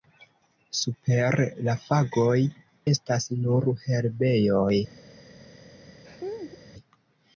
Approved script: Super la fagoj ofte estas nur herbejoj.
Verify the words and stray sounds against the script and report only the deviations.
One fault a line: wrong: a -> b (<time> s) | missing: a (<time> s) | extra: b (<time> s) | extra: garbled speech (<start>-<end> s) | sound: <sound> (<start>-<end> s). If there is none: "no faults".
missing: ofte (2.4 s)
sound: laugh (6.0-6.6 s)